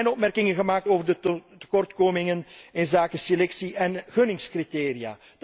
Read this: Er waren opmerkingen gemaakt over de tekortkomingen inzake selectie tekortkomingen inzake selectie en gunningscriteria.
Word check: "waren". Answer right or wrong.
wrong